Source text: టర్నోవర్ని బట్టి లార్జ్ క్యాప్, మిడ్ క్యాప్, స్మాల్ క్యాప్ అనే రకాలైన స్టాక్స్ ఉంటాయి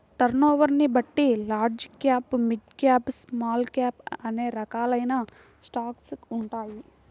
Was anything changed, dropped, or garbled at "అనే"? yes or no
no